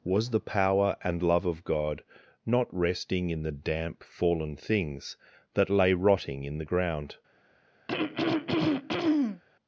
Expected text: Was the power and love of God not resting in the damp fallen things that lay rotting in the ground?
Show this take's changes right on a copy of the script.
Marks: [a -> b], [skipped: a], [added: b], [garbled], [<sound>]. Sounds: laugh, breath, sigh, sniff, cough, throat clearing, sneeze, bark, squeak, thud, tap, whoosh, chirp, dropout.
Was the power and love of God not resting in the damp fallen things that lay rotting in the ground? [throat clearing]